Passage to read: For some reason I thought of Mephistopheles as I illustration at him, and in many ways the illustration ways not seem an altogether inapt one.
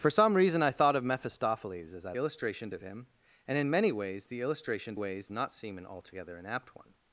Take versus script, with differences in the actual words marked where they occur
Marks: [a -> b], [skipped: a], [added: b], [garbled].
For some reason I thought of Mephistopheles as I illustration at him, and in many ways the illustration ways not seem an altogether inapt one.